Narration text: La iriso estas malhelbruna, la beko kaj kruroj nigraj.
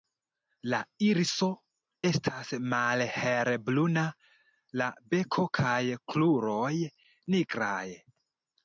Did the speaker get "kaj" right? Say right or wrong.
right